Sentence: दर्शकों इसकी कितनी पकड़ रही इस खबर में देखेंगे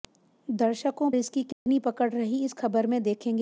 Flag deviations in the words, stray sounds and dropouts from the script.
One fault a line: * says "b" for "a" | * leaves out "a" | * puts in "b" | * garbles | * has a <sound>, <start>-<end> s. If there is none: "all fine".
* has a dropout, 1.5-1.7 s